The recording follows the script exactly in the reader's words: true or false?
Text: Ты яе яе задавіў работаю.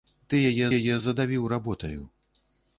true